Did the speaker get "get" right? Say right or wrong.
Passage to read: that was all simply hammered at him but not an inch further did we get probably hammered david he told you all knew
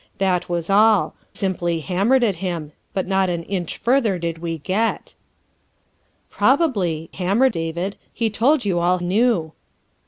right